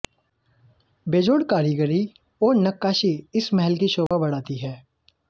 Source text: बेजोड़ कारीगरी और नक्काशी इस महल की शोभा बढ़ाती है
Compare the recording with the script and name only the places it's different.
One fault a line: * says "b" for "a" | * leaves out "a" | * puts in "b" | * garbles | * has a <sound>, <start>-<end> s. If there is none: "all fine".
* has a dropout, 4.1-4.1 s